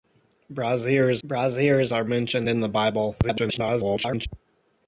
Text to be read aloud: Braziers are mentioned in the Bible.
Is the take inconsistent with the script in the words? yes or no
yes